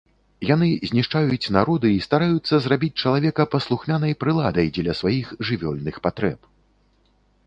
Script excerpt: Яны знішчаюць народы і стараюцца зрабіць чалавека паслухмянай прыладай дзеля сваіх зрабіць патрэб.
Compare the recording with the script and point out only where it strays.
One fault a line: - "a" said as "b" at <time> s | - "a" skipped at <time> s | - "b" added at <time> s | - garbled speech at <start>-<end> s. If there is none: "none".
- "зрабіць" said as "жывёльных" at 5.5 s